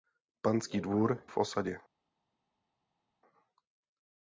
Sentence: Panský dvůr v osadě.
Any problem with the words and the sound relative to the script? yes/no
no